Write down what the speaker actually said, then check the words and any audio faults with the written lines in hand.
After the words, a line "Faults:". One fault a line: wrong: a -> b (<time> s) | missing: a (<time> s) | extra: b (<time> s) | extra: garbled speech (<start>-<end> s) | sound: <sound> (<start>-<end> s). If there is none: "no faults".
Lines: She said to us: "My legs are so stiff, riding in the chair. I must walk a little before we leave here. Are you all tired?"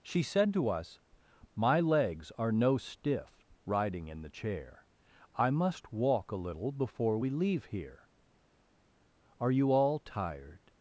She said to us: "My legs are no stiff, riding in the chair. I must walk a little before we leave here. Are you all tired?"
Faults:
wrong: so -> no (2.5 s)